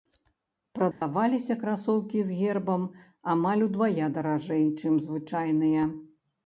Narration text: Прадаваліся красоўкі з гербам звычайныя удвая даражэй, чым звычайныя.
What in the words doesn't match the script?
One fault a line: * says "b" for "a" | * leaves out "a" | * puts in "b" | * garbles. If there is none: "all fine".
* says "амаль" for "звычайныя"